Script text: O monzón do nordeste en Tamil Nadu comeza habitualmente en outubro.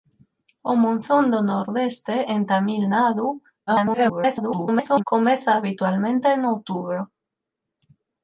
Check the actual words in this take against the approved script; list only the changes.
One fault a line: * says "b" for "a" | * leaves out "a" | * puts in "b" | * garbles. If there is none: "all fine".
* garbles